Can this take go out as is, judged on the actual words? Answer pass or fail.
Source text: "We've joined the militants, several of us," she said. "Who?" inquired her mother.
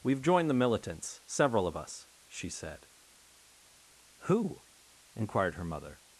pass